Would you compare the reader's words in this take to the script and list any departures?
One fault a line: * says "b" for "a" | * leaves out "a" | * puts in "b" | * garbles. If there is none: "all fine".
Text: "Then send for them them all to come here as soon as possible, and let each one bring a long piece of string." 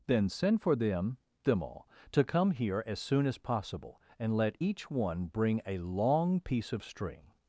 all fine